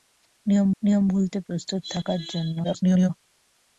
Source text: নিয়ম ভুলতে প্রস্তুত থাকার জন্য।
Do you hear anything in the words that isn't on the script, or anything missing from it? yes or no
yes